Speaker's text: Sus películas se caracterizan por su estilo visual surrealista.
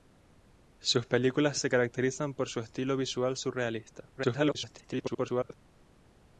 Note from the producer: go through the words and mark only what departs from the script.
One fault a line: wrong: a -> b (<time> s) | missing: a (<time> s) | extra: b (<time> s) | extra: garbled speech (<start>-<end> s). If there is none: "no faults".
extra: garbled speech (4.2-5.5 s)